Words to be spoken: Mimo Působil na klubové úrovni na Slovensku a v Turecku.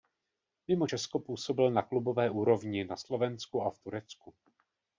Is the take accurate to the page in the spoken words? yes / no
no